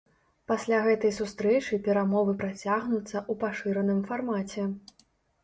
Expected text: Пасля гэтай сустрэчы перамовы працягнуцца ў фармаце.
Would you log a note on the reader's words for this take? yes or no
yes